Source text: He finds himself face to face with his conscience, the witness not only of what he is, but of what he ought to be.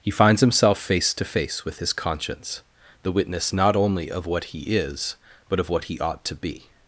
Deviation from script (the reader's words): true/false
false